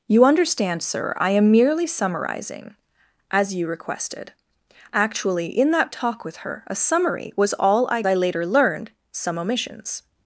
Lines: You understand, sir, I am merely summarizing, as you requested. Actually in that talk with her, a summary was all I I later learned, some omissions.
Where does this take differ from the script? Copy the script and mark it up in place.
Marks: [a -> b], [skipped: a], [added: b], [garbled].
You understand, sir, I am merely summarizing, as you requested. Actually in that talk with her, a summary was all I I later learned, some omissions.